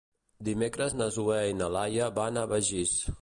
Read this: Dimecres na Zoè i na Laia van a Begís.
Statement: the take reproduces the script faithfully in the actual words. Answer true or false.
true